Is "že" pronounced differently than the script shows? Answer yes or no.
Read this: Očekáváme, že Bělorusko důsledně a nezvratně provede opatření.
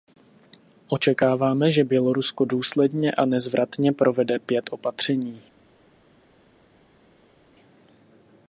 no